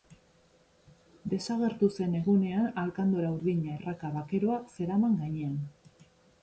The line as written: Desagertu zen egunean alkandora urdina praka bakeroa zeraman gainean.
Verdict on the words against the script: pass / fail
pass